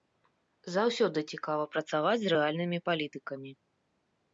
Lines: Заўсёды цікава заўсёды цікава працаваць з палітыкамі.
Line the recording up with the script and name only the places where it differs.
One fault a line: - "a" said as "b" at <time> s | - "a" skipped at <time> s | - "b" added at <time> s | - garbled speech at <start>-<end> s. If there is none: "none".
- "заўсёды цікава" skipped at 1.7 s
- "рэальнымі" added at 2.4 s